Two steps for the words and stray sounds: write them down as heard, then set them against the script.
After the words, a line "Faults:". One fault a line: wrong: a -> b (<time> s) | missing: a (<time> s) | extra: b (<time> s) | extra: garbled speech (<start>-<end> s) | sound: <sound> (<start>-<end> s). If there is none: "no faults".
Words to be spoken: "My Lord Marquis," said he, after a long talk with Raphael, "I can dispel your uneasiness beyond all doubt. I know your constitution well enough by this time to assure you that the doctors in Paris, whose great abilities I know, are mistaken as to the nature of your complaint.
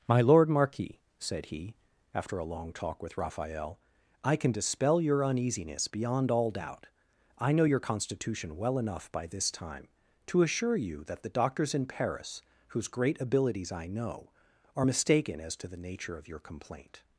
"My Lord Marquis," said he, after a long talk with Raphael, "I can dispel your uneasiness beyond all doubt. I know your constitution well enough by this time to assure you that the doctors in Paris, whose great abilities I know, are mistaken as to the nature of your complaint.
Faults:
no faults